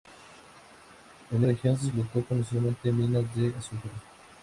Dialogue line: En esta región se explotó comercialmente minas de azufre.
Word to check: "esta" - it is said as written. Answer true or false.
false